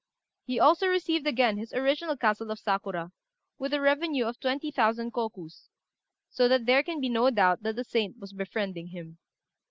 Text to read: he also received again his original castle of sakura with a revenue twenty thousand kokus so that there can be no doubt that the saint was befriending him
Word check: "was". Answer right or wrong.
right